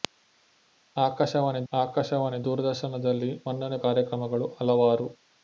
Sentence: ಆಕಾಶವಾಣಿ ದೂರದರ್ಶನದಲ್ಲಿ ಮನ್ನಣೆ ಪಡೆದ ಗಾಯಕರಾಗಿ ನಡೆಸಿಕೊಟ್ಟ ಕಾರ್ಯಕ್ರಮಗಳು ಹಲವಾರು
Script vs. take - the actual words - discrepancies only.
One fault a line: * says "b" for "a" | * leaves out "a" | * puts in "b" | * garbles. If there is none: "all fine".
* puts in "ಆಕಾಶವಾಣಿ"
* leaves out "ಪಡೆದ ಗಾಯಕರಾಗಿ ನಡೆಸಿಕೊಟ್ಟ"